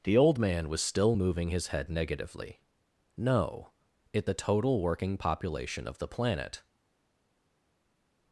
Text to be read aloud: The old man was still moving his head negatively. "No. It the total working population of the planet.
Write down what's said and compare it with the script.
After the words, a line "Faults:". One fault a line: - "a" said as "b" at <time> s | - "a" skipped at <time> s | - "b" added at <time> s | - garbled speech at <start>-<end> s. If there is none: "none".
The old man was still moving his head negatively. "No. It the total working population of the planet.
Faults:
none